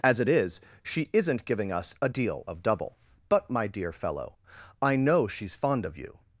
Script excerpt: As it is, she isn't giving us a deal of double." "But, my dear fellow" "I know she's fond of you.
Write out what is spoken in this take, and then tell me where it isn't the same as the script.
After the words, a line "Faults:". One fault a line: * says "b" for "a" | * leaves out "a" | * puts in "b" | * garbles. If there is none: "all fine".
As it is, she isn't giving us a deal of double." "But, my dear fellow" "I know she's fond of you.
Faults:
all fine